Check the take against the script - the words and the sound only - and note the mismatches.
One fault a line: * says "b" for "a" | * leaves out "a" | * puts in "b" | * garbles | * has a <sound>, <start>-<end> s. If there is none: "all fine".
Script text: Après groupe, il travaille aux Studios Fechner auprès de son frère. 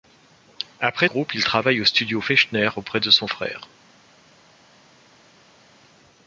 all fine